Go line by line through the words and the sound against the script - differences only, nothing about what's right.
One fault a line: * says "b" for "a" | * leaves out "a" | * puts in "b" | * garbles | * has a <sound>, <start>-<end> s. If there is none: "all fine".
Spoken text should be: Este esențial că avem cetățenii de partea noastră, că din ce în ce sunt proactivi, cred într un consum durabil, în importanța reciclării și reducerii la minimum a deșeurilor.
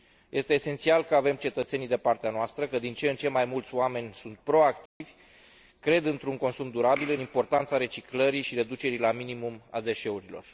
* puts in "mai mulți oameni"
* has a dropout, 4.9-5.0 s